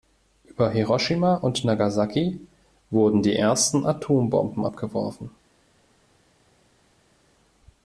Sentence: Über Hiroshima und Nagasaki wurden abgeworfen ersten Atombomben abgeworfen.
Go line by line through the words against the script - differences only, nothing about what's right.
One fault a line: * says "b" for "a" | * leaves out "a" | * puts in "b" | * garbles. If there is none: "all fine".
* says "die" for "abgeworfen"